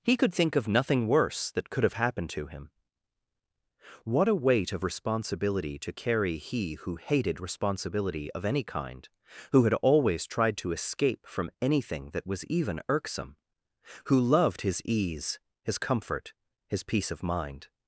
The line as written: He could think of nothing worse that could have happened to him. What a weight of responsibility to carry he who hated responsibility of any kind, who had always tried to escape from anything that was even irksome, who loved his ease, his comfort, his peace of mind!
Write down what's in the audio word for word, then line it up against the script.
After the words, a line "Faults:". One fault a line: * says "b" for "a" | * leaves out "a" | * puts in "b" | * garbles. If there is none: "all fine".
He could think of nothing worse that could have happened to him. What a weight of responsibility to carry he who hated responsibility of any kind, who had always tried to escape from anything that was even irksome, who loved his ease, his comfort, his peace of mind!
Faults:
all fine